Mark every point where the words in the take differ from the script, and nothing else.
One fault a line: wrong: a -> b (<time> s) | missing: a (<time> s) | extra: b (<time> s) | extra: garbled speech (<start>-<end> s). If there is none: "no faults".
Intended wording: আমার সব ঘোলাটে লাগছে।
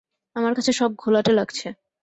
extra: কাছে (0.5 s)